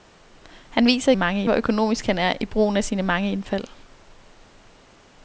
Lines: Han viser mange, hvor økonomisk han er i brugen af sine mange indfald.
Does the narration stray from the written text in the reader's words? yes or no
no